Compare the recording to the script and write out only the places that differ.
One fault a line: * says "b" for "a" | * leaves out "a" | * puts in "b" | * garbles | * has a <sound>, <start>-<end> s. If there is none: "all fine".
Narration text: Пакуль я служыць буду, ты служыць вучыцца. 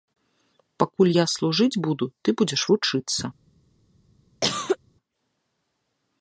* says "будзеш" for "служыць"
* has a cough, 4.4-4.8 s